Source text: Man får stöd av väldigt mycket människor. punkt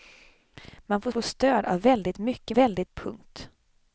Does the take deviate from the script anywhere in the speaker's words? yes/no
yes